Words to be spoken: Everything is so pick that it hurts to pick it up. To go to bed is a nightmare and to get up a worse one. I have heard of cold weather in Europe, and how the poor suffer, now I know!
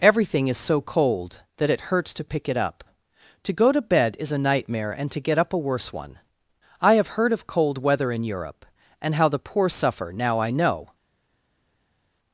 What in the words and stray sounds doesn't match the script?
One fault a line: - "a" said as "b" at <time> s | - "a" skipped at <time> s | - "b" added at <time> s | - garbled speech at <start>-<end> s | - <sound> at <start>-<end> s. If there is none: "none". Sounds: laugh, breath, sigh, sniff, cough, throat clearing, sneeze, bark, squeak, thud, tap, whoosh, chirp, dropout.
- "pick" said as "cold" at 0.8 s